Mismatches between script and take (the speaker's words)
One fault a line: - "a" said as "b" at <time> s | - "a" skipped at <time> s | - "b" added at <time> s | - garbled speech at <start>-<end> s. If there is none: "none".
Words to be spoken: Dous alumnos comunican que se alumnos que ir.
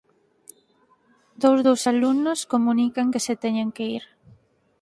- "dos" added at 1.7 s
- "alumnos" said as "teñen" at 3.4 s